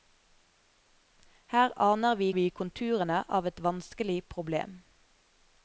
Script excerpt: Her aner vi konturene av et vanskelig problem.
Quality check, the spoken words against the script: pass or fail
fail